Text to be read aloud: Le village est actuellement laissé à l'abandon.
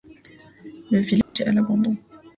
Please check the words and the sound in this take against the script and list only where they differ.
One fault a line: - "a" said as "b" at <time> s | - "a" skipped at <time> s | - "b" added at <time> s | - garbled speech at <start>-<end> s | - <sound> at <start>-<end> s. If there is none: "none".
- dropout at 1.2-1.4 s
- "actuellement laissé" skipped at 1.5 s